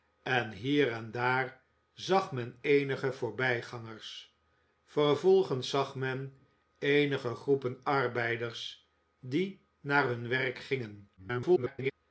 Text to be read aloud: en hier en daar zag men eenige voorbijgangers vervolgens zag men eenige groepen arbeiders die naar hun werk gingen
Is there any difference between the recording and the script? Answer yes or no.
yes